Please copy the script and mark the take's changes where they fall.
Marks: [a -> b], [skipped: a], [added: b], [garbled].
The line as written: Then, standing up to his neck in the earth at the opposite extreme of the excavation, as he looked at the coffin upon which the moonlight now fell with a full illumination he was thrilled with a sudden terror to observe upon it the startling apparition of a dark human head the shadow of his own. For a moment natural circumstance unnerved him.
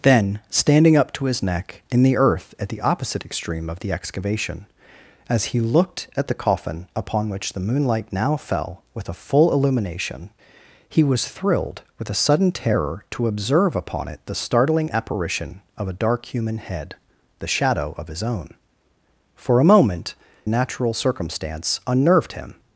Then, standing up to his neck in the earth at the opposite extreme of the excavation, as he looked at the coffin upon which the moonlight now fell with a full illumination he was thrilled with a sudden terror to observe upon it the startling apparition of a dark human head the shadow of his own. For a moment natural circumstance unnerved him.